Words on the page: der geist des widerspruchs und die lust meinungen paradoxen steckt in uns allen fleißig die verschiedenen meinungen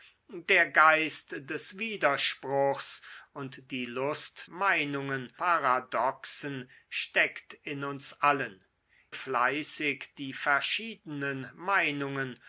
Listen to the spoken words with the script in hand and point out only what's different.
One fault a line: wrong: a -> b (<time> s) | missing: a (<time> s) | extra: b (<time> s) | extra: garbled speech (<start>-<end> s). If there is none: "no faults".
no faults